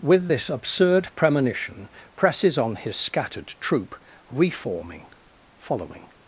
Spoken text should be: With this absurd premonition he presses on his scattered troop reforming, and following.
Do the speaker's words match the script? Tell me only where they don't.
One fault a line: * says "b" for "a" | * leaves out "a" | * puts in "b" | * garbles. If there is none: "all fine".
* leaves out "he"
* leaves out "and"